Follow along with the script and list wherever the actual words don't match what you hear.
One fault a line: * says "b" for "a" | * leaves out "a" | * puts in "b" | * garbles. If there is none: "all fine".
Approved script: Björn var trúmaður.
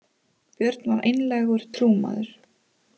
* puts in "einlægur"